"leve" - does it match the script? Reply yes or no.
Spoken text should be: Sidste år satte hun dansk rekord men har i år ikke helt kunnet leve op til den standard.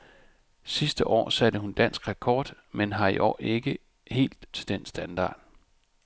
no